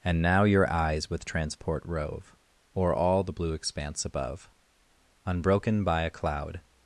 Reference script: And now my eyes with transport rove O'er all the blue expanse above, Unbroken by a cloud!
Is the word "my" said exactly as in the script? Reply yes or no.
no